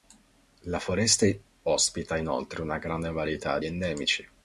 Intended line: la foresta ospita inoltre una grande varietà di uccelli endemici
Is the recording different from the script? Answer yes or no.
yes